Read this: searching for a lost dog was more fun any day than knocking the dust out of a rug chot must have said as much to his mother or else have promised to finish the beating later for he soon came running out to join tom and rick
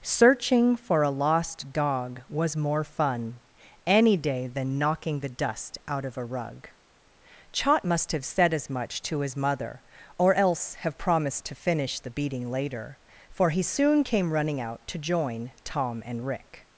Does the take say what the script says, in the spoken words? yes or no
yes